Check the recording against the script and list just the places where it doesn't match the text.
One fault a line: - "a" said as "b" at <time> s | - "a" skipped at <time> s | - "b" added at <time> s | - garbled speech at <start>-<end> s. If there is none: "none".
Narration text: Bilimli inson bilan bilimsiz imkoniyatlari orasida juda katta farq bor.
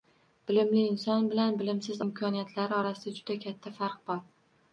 none